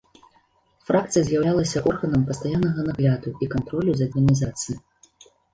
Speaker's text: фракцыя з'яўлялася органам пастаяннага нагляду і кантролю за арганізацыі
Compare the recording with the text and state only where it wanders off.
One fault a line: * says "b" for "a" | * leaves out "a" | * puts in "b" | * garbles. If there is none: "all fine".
all fine